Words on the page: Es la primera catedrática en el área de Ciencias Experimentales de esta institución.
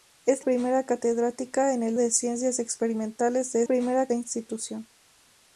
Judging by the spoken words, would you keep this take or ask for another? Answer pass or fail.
fail